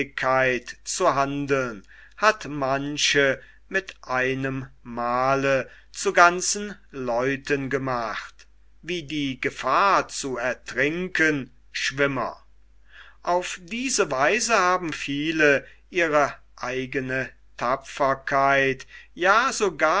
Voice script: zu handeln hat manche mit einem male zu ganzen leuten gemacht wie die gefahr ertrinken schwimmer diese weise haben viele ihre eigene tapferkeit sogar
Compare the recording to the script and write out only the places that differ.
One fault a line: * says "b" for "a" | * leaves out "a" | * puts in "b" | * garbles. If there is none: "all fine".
* puts in "zu"
* puts in "auf"
* puts in "ja"